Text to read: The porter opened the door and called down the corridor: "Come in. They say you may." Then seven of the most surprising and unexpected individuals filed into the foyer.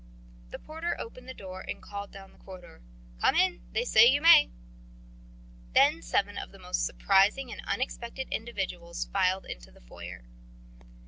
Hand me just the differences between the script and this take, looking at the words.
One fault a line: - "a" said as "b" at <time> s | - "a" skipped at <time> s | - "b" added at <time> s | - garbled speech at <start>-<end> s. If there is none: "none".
none